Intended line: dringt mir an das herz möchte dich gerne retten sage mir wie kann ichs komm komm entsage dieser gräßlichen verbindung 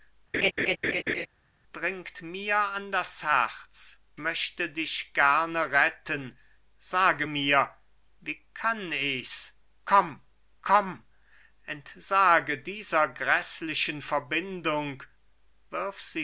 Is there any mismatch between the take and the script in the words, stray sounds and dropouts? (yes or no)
yes